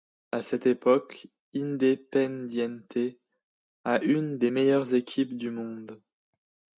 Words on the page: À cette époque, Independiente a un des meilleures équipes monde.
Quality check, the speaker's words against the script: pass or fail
fail